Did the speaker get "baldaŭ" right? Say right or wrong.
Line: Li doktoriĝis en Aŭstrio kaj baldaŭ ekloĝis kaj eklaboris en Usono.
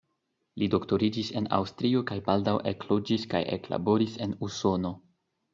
right